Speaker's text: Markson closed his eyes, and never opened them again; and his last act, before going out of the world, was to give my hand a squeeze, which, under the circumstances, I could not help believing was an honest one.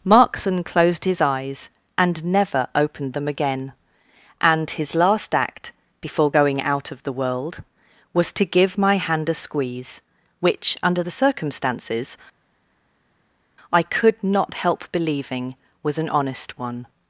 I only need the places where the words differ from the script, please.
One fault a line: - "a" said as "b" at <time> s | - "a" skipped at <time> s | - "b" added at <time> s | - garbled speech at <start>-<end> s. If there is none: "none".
none